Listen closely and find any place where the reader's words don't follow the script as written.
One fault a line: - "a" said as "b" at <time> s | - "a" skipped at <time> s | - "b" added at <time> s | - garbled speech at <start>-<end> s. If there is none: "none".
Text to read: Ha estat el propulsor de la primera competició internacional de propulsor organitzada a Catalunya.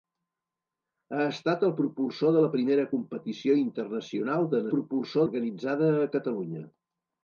none